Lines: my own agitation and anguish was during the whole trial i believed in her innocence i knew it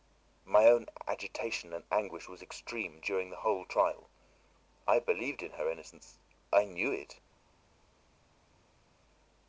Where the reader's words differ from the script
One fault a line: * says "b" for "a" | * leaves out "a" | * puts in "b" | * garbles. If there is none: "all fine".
* puts in "extreme"